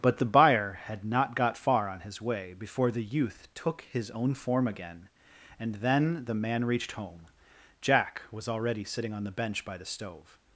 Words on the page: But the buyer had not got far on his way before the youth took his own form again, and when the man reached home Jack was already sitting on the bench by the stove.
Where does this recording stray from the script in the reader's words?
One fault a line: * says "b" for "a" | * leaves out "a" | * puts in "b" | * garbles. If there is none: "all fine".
* says "then" for "when"